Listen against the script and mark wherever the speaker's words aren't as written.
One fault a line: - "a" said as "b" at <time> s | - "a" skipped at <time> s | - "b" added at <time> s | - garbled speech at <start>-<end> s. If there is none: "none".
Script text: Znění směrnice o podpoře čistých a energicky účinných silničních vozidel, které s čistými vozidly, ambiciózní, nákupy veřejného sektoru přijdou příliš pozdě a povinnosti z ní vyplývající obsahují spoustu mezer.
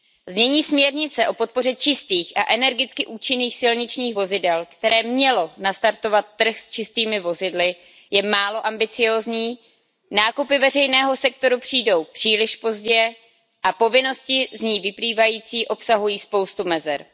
- "mělo nastartovat trh" added at 5.0 s
- "je málo" added at 8.1 s